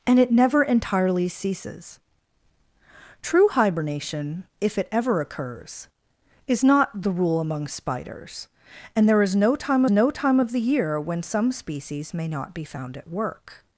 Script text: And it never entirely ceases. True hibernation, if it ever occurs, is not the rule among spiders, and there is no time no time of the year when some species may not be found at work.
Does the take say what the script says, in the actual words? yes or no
yes